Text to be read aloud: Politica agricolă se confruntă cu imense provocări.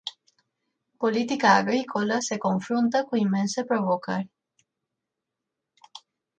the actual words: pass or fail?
pass